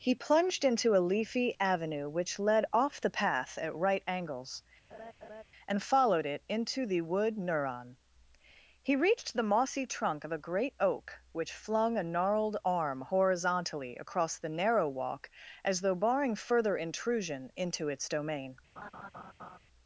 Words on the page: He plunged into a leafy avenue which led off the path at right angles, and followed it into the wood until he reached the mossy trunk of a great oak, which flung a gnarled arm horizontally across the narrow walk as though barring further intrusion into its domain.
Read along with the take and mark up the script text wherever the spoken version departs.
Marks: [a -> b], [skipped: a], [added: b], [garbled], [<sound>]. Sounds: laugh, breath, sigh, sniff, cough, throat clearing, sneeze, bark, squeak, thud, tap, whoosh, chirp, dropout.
He plunged into a leafy avenue which led off the path at right angles, [laugh] and followed it into the wood [until -> neuron] he reached the mossy trunk of a great oak, which flung a gnarled arm horizontally across the narrow walk as though barring further intrusion into its domain. [laugh]